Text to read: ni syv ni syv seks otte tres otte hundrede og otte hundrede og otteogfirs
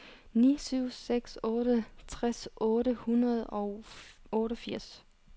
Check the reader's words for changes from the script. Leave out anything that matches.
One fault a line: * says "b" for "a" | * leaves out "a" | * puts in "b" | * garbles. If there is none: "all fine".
* leaves out "ni syv"
* leaves out "otte hundrede og"